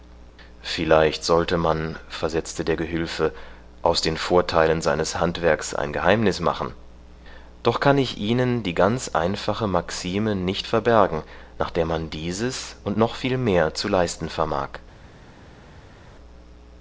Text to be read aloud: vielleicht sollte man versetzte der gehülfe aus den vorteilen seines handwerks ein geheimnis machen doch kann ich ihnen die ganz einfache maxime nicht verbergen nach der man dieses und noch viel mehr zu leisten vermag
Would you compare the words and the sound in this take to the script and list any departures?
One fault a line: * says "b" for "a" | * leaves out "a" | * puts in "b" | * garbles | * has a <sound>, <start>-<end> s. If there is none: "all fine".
all fine